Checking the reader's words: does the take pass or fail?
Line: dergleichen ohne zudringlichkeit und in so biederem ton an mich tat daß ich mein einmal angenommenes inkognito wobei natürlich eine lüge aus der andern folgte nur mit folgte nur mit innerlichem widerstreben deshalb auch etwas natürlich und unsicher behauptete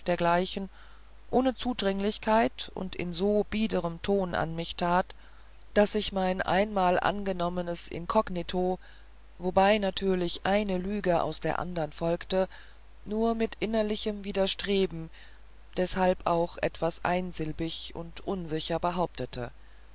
fail